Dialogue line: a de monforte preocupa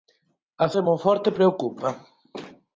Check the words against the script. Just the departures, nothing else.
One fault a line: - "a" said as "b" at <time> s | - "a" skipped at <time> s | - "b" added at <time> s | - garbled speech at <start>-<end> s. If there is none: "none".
none